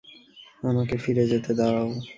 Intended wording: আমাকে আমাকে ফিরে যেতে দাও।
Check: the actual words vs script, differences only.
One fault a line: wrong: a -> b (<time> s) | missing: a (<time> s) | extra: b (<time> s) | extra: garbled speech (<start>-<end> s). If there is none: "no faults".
missing: আমাকে (0.9 s)